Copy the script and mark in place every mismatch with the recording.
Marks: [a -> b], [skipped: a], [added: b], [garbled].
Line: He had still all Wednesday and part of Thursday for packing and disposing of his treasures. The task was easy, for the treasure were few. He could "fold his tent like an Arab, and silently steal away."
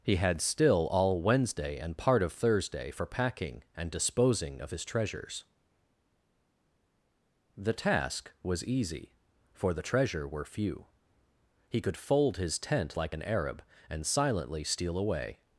He had still all Wednesday and part of Thursday for packing and disposing of his treasures. The task was easy, for the treasure were few. He could "fold his tent like an Arab, and silently steal away."